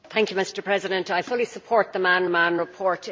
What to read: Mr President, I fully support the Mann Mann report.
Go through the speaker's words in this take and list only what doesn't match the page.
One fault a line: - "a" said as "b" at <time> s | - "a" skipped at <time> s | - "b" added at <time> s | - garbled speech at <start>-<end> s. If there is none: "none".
none